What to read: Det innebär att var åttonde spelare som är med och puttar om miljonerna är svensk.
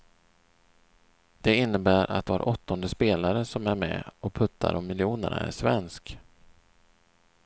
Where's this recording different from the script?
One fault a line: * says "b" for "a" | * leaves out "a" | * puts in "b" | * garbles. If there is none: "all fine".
all fine